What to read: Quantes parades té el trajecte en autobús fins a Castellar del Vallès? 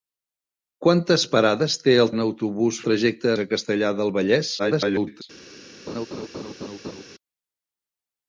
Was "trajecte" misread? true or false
true